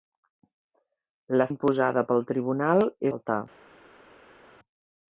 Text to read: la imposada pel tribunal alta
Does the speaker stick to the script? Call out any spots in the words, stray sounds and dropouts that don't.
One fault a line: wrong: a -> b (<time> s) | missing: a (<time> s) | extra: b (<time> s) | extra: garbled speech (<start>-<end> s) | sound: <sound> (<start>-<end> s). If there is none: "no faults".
no faults